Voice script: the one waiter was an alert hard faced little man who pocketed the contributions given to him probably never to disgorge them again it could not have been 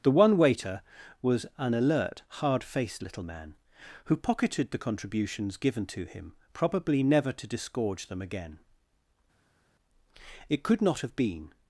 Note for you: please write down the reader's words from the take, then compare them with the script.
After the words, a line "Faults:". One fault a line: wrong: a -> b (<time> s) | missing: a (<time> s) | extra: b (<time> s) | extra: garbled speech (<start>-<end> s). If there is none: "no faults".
the one waiter was an alert hard faced little man who pocketed the contributions given to him probably never to disgorge them again it could not have been
Faults:
no faults